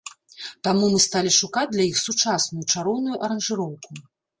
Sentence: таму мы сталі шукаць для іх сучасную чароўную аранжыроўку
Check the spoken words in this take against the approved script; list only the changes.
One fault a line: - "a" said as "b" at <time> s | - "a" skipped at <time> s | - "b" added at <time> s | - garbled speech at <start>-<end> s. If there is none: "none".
none